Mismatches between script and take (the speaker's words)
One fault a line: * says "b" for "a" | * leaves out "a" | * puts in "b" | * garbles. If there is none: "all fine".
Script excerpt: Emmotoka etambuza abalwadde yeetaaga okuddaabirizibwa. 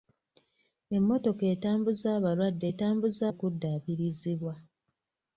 * says "etambuza" for "yeetaaga"